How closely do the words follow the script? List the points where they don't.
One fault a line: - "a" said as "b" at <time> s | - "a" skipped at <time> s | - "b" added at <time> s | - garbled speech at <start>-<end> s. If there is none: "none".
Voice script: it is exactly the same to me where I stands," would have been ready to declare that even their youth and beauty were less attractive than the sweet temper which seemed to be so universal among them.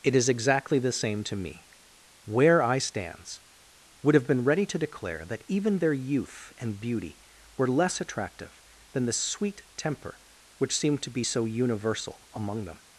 none